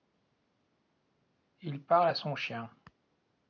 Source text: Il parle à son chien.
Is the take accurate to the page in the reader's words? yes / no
yes